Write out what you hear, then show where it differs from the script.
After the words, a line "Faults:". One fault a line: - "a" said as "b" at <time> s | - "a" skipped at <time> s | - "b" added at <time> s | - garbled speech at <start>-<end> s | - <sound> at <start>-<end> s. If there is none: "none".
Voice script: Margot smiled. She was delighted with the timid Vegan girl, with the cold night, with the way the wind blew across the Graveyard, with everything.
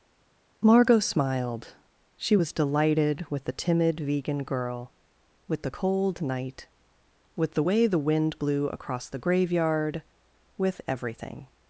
Margot smiled. She was delighted with the timid Vegan girl, with the cold night, with the way the wind blew across the Graveyard, with everything.
Faults:
none